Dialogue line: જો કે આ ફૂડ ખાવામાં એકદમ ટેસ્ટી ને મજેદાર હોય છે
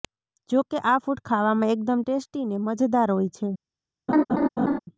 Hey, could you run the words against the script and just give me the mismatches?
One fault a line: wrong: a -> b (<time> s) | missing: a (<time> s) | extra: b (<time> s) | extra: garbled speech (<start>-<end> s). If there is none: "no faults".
no faults